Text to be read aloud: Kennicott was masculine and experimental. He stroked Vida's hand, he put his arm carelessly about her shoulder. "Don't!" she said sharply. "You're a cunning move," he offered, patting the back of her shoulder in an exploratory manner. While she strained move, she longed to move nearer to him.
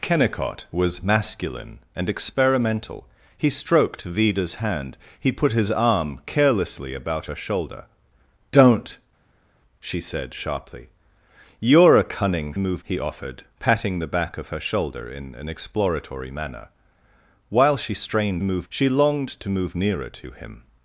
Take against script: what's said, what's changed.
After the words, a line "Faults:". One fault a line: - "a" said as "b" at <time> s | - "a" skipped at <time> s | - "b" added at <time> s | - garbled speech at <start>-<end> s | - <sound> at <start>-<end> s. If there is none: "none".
Kennicott was masculine and experimental. He stroked Vida's hand, he put his arm carelessly about her shoulder. "Don't!" she said sharply. "You're a cunning move," he offered, patting the back of her shoulder in an exploratory manner. While she strained move, she longed to move nearer to him.
Faults:
none